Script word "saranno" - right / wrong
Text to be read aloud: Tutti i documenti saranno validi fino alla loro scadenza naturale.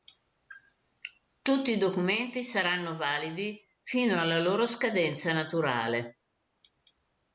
right